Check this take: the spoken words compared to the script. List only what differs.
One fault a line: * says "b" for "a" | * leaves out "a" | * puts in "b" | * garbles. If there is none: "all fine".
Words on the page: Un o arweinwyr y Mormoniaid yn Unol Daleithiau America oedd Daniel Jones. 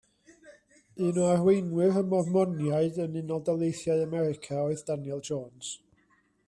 all fine